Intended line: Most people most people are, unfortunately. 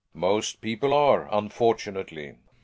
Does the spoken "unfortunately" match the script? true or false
true